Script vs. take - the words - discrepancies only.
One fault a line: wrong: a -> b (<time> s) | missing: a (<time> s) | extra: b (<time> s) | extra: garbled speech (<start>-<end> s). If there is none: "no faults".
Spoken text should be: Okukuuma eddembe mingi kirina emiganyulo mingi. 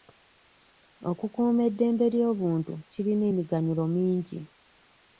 wrong: mingi -> ly'obuntu (2.1 s)